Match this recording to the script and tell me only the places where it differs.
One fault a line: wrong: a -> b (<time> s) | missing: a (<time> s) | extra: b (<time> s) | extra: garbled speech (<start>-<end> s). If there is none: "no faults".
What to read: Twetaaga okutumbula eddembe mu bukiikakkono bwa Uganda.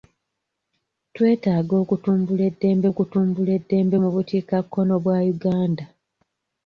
extra: okutumbula eddembe (2.9 s)